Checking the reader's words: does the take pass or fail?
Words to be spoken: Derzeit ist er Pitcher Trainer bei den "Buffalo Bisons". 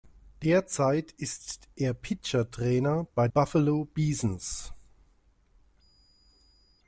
fail